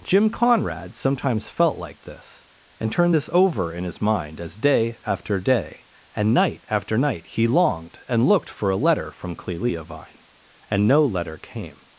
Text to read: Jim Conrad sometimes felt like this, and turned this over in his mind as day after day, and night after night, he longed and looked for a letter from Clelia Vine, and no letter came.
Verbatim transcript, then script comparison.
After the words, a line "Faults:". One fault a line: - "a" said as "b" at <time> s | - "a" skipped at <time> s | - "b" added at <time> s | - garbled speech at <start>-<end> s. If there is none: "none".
Jim Conrad sometimes felt like this, and turned this over in his mind as day after day, and night after night, he longed and looked for a letter from Clelia Vine, and no letter came.
Faults:
none